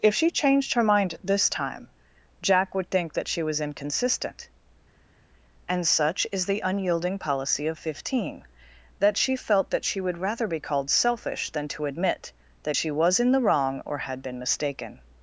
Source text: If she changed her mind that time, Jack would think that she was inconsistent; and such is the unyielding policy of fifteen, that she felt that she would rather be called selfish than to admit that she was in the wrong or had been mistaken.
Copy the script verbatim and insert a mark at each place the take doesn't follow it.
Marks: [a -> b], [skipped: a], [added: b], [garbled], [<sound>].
If she changed her mind [that -> this] time, Jack would think that she was inconsistent; and such is the unyielding policy of fifteen, that she felt that she would rather be called selfish than to admit that she was in the wrong or had been mistaken.